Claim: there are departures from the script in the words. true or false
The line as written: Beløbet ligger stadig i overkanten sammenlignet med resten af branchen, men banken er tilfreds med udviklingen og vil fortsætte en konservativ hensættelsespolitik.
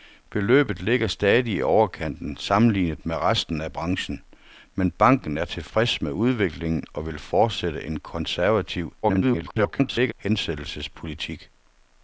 true